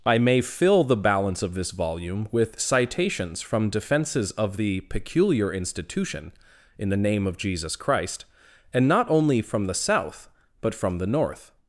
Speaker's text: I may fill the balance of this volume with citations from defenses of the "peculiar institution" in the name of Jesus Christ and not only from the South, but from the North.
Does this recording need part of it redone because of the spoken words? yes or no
no